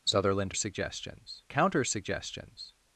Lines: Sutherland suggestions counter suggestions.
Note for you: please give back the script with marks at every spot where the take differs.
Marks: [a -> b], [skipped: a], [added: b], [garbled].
Sutherland suggestions counter suggestions.